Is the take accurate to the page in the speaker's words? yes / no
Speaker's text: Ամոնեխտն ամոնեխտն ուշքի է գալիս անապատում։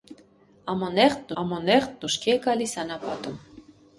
yes